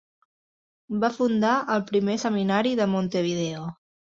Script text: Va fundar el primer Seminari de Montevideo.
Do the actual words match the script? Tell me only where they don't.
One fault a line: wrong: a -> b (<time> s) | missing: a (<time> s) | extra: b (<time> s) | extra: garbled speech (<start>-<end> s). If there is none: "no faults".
no faults